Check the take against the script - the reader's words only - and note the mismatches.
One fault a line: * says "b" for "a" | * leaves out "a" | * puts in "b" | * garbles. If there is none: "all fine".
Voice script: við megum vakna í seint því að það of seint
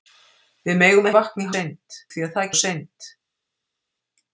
all fine